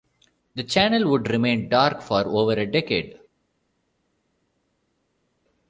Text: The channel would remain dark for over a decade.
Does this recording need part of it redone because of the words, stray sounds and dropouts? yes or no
no